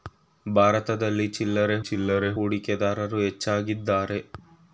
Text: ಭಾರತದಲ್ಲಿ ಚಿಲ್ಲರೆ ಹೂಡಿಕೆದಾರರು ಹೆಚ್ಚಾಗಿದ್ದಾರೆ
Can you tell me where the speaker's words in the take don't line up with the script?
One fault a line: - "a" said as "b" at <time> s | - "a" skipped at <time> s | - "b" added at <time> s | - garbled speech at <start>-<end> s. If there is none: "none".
- "ಚಿಲ್ಲರೆ" added at 1.8 s